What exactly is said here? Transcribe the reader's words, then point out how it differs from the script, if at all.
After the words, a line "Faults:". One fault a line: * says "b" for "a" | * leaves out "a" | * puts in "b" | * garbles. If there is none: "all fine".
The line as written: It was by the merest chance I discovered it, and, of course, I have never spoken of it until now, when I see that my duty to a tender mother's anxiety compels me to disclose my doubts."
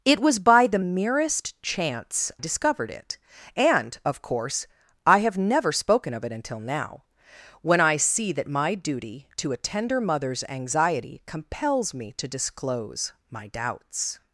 It was by the merest chance discovered it, and, of course, I have never spoken of it until now, when I see that my duty to a tender mother's anxiety compels me to disclose my doubts."
Faults:
* leaves out "I"